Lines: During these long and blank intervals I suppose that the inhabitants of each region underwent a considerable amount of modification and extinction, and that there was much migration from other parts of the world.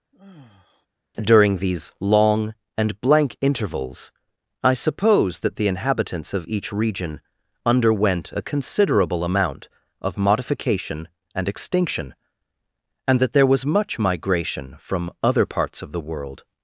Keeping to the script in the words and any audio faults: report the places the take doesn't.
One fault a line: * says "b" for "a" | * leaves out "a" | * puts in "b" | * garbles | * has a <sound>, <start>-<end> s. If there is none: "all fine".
* has a sigh, 0.1-0.9 s